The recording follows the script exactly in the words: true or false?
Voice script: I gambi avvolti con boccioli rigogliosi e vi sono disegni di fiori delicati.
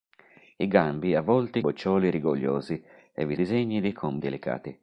false